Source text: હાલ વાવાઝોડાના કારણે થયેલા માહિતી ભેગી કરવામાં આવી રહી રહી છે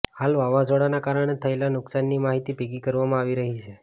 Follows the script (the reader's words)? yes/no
no